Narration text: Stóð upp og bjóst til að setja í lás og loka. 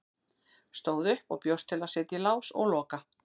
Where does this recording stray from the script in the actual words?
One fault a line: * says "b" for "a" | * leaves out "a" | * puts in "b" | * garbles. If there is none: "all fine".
all fine